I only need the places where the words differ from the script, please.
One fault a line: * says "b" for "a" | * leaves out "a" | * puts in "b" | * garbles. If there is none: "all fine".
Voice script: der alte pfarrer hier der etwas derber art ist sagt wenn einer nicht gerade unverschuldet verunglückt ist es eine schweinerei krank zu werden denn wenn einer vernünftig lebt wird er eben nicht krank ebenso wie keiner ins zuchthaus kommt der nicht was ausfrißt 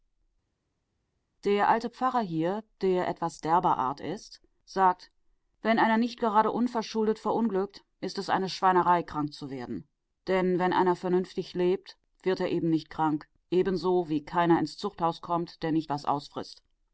all fine